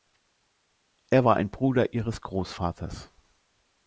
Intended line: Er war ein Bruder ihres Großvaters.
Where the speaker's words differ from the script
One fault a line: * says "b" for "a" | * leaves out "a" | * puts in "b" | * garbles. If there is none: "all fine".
all fine